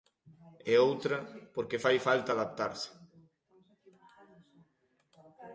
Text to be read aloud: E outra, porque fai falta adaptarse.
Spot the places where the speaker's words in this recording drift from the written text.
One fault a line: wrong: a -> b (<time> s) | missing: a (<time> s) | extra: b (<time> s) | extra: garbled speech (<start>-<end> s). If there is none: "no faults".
no faults